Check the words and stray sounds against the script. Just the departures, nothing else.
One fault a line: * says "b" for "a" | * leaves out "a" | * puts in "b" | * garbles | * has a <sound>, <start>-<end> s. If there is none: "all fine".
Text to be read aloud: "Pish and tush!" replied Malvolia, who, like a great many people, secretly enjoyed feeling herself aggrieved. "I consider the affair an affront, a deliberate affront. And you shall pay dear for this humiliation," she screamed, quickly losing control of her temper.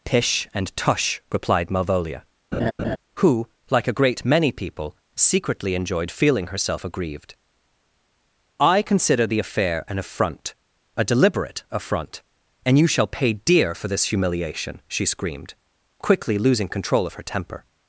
* has a laugh, 2.5-3.0 s